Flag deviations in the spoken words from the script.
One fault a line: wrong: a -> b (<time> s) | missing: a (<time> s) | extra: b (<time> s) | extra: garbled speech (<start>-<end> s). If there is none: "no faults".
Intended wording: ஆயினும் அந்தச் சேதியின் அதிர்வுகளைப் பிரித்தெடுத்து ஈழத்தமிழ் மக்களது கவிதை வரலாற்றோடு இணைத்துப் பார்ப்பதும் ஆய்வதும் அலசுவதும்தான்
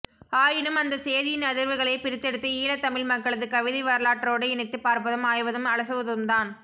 no faults